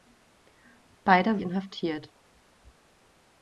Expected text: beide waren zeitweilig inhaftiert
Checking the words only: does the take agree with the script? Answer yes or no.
no